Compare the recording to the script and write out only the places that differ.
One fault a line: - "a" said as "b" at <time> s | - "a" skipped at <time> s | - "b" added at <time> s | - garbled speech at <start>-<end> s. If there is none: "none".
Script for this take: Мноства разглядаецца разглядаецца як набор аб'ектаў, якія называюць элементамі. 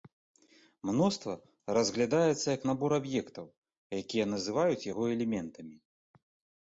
- "разглядаецца" skipped at 2.5 s
- "яго" added at 4.9 s